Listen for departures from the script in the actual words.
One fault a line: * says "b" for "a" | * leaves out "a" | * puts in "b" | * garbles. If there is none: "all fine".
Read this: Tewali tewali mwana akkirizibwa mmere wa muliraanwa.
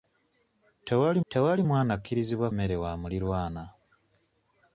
all fine